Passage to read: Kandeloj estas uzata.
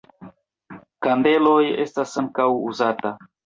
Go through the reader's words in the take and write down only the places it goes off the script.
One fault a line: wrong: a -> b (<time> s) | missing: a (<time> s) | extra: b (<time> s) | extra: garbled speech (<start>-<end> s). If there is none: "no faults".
extra: ankaŭ (2.2 s)